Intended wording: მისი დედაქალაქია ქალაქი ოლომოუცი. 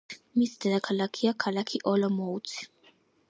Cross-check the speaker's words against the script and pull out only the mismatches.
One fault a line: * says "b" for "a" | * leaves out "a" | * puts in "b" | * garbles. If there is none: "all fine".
all fine